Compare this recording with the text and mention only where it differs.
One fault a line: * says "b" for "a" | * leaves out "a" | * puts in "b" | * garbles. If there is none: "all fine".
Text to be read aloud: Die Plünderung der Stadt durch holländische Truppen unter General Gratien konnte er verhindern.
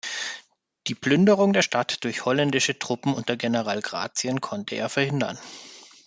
all fine